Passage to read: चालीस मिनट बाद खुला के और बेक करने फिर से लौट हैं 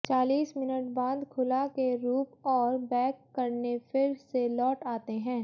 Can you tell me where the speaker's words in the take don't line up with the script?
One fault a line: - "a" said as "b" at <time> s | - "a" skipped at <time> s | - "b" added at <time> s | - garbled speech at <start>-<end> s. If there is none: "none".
- "रूप" added at 2.0 s
- "आते" added at 4.9 s